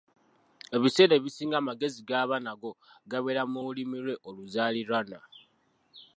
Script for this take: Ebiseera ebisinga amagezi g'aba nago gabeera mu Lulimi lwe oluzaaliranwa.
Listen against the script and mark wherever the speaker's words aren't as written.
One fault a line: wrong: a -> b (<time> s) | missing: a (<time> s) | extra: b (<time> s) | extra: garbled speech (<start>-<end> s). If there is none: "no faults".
no faults